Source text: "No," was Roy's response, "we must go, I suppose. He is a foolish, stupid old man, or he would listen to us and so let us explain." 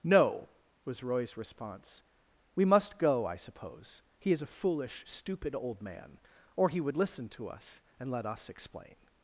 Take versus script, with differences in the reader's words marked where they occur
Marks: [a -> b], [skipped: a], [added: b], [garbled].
"No," was Roy's response, "we must go, I suppose. He is a foolish, stupid old man, or he would listen to us and [skipped: so] let us explain."